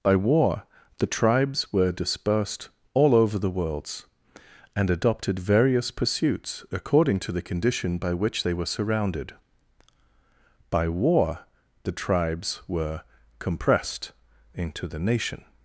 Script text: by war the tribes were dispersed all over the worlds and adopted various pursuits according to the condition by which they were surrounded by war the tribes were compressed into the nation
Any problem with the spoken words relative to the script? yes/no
no